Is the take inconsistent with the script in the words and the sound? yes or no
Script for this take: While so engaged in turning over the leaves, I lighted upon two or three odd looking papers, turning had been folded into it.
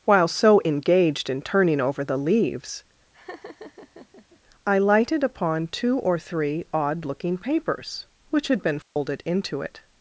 yes